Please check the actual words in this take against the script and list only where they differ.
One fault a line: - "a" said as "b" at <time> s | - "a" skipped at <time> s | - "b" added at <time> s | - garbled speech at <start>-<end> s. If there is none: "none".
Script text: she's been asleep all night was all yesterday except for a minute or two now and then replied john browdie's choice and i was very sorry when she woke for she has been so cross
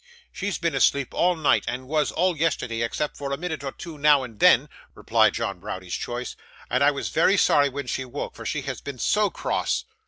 - "and" added at 1.7 s